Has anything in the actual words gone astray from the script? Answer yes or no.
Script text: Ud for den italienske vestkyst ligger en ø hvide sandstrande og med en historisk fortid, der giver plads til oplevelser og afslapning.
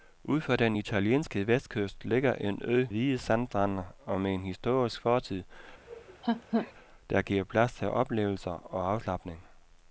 no